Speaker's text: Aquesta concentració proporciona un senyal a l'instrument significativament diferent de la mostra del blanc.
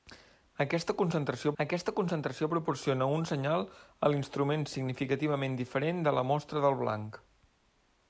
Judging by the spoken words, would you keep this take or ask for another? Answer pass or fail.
fail